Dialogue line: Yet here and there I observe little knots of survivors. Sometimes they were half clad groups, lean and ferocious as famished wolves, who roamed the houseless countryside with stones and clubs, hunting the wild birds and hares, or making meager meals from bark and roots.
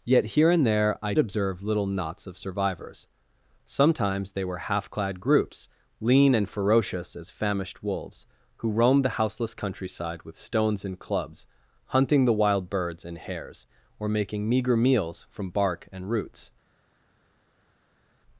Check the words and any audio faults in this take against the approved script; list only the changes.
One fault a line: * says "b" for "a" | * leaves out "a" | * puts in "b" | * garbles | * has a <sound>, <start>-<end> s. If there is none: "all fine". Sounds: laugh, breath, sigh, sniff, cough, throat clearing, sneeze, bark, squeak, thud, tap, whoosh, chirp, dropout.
all fine